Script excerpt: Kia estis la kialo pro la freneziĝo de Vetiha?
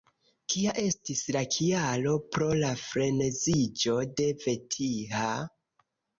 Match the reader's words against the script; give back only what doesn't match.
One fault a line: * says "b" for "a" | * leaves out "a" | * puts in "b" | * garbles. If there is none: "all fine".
all fine